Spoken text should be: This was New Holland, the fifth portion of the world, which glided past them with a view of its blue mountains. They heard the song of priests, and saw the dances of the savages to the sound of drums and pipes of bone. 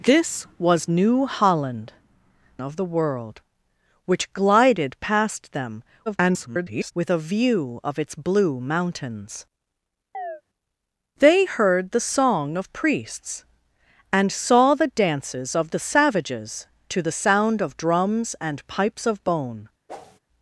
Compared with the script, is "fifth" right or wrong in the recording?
wrong